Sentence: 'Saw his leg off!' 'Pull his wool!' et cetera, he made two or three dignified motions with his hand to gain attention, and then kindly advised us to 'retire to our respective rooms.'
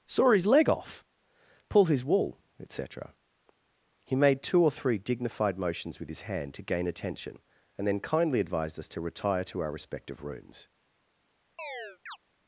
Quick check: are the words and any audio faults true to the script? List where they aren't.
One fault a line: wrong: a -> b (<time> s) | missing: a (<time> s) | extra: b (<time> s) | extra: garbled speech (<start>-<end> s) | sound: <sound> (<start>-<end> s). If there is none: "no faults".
sound: chirp (11.6-12.2 s)